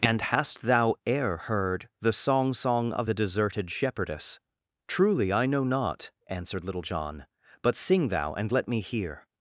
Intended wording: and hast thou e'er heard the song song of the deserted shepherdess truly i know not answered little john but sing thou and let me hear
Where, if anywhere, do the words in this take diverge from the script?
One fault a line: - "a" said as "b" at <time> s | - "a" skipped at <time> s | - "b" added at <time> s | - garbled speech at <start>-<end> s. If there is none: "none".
none